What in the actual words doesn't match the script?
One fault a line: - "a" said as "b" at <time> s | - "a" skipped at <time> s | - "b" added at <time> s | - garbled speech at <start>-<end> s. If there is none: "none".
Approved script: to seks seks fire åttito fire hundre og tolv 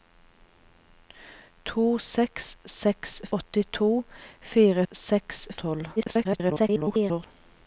- "fire" skipped at 3.2 s
- "hundre" said as "seks" at 4.9 s
- garbled speech at 6.0-7.3 s